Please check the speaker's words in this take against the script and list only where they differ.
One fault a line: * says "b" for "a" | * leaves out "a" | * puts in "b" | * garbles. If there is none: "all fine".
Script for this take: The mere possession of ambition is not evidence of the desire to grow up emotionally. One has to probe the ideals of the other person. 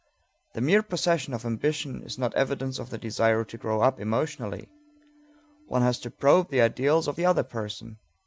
all fine